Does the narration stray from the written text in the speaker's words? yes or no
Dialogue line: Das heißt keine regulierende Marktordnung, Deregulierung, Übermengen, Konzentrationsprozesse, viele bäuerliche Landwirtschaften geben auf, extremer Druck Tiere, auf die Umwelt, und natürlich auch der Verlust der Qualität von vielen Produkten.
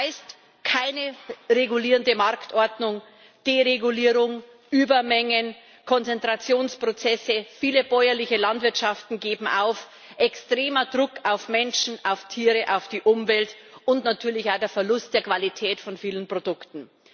yes